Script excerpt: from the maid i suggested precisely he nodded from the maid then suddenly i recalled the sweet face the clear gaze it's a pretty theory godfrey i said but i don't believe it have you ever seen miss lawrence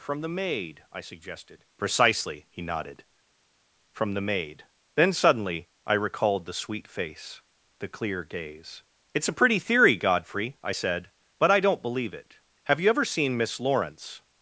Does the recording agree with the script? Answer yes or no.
yes